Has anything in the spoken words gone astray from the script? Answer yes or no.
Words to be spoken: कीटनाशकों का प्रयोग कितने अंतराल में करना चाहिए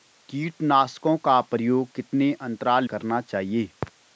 yes